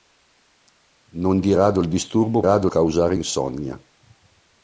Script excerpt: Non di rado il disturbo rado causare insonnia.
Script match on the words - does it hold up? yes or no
yes